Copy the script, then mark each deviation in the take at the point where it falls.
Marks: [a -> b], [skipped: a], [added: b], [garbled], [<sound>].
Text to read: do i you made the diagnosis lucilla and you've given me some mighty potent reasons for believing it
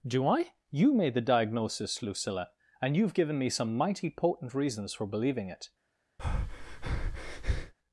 do i you made the diagnosis lucilla and you've given me some mighty potent reasons for believing it [breath]